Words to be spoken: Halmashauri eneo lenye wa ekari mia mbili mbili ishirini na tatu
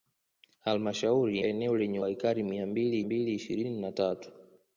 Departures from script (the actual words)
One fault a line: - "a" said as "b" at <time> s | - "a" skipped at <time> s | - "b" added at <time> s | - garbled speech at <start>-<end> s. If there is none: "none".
none